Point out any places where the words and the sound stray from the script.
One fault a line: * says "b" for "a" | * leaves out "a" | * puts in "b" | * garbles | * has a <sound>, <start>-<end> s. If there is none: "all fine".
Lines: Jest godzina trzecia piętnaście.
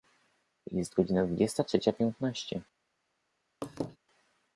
* puts in "dwudziesta"
* has a laugh, 3.6-4.0 s